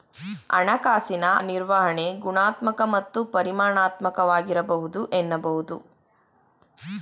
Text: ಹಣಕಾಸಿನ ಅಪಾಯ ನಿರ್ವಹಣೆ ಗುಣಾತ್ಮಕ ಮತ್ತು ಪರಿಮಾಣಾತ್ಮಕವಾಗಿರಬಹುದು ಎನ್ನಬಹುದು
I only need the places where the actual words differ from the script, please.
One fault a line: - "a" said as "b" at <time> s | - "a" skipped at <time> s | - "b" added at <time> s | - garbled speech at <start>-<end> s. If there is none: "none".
- "ಅಪಾಯ" skipped at 1.2 s